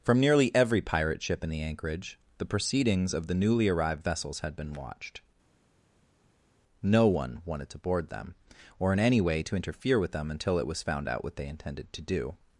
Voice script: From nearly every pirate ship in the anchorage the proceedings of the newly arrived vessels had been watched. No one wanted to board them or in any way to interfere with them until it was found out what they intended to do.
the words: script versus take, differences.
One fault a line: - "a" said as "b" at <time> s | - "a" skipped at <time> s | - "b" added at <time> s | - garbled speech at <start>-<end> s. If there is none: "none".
none